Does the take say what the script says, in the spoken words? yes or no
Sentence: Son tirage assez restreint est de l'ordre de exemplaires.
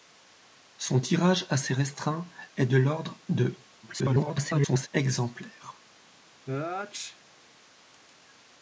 no